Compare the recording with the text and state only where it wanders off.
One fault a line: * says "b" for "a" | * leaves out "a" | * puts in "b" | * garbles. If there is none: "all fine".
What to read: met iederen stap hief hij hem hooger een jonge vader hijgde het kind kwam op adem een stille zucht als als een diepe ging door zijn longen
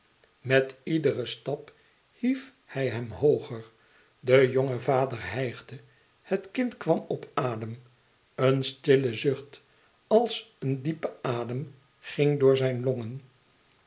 * says "de" for "een"
* leaves out "als"
* puts in "adem"